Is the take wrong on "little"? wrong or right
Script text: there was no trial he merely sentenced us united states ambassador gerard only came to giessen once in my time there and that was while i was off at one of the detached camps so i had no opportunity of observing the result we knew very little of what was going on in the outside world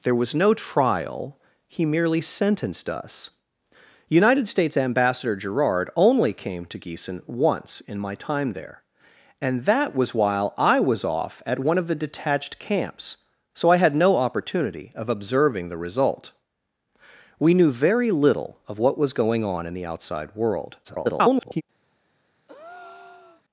right